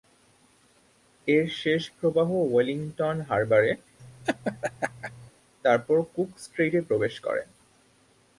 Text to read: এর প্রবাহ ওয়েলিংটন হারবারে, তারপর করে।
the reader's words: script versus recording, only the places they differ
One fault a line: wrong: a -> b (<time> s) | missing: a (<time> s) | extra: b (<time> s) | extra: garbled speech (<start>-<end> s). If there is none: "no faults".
extra: শেষ (1.6 s)
extra: কুক স্ট্রেইটে প্রবেশ (6.1 s)